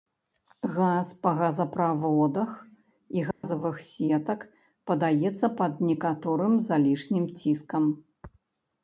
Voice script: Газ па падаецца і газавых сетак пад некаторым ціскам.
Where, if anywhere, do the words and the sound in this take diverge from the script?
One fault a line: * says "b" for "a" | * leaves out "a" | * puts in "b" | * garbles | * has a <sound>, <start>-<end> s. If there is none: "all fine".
* says "газаправодах" for "падаецца"
* has a dropout, 3.3-3.4 s
* puts in "падаецца"
* puts in "залішнім"